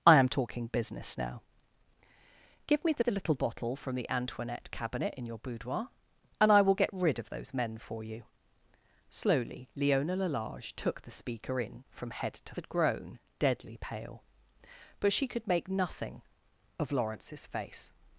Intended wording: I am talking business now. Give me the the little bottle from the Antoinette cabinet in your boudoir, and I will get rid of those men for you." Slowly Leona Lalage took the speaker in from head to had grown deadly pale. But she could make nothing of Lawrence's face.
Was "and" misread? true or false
false